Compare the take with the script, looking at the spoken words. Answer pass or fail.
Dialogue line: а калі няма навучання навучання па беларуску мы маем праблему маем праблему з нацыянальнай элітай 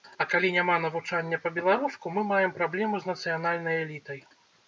fail